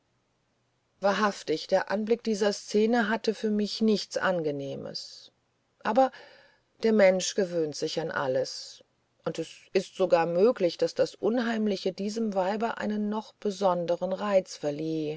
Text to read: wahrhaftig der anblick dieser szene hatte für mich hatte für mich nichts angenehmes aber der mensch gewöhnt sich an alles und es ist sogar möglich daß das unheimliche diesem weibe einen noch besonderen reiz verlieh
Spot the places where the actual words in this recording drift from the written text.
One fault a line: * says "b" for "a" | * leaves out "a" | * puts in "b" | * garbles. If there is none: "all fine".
* leaves out "hatte für mich"